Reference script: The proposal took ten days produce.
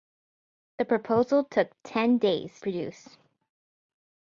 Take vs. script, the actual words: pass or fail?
pass